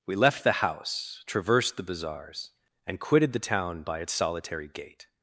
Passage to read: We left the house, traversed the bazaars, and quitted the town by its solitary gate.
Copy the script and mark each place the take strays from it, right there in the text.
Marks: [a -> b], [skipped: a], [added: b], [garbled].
We left the house, traversed the bazaars, and quitted the town by its solitary gate.